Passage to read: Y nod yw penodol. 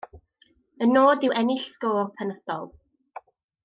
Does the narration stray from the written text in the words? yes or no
yes